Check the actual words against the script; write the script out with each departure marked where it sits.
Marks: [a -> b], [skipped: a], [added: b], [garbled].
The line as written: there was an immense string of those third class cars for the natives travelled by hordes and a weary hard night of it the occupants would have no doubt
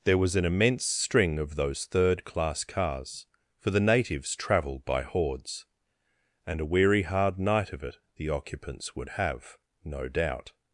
there was an immense string of those third class cars for the natives travelled by hordes and a weary hard night of it the occupants would have no doubt